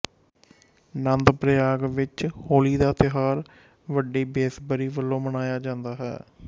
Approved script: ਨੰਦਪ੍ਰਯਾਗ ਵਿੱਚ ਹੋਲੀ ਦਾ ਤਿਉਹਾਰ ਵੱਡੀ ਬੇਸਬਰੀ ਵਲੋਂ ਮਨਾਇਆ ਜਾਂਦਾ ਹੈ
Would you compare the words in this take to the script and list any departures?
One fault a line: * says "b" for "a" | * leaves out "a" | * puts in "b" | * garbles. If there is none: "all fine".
all fine